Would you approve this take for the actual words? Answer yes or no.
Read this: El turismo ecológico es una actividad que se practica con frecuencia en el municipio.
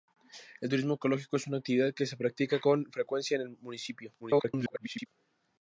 no